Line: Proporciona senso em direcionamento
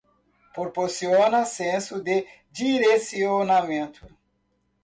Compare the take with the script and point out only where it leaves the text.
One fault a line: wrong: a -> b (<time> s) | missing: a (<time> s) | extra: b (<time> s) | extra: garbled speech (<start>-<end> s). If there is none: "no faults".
wrong: em -> de (2.0 s)